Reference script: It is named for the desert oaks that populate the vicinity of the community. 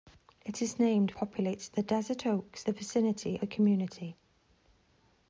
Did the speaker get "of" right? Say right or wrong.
wrong